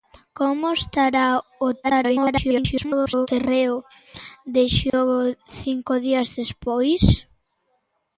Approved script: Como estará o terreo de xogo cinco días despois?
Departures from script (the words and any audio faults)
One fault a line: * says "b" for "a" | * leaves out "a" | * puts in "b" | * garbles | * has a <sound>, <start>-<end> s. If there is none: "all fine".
* garbles
* has a dropout, 4.9-4.9 s